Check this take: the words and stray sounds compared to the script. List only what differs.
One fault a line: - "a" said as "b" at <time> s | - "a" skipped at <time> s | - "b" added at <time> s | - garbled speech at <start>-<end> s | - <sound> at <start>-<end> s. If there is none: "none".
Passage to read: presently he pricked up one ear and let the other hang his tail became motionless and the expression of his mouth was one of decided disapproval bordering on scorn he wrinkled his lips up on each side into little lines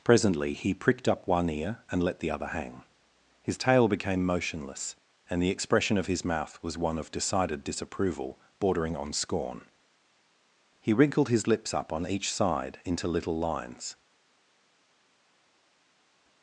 none